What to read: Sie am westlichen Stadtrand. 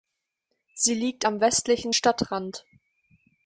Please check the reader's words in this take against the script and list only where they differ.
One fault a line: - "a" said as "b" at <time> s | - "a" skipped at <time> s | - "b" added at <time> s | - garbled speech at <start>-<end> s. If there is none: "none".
- "liegt" added at 0.9 s